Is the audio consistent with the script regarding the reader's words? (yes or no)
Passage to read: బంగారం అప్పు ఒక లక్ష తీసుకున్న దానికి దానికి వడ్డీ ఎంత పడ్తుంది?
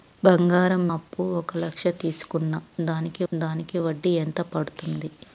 yes